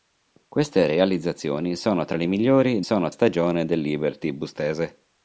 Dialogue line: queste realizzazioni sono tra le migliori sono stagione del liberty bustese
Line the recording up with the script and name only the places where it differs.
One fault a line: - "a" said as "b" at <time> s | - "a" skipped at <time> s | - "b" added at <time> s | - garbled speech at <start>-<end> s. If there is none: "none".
none